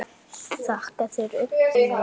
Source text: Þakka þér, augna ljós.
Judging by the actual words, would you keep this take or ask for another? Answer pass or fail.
pass